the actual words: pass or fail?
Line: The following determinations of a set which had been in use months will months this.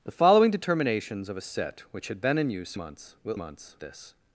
pass